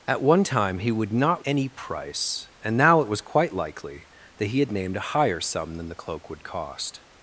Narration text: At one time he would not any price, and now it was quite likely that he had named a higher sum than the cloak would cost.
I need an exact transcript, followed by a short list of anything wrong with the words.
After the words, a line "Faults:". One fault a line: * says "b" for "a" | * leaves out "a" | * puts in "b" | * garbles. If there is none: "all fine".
At one time he would not any price, and now it was quite likely that he had named a higher sum than the cloak would cost.
Faults:
all fine